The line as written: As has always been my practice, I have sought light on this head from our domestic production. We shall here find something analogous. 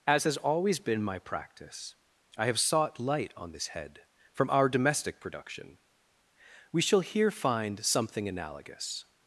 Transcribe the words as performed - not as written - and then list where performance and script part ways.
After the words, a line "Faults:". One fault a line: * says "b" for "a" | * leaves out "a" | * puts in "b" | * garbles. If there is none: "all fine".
As has always been my practice, I have sought light on this head from our domestic production. We shall here find something analogous.
Faults:
all fine